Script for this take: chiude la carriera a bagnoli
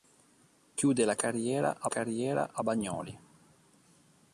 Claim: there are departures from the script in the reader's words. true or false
true